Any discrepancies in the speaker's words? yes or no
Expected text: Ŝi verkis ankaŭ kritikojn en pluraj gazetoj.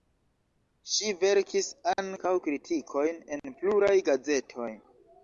no